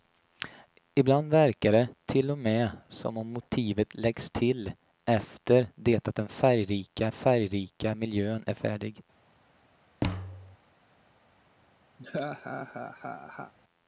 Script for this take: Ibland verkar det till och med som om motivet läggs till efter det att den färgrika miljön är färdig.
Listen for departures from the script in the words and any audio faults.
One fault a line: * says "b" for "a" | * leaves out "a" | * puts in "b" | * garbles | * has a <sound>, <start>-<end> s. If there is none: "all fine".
* puts in "färgrika"
* has a thud, 10.0-10.6 s
* has a laugh, 12.0-13.5 s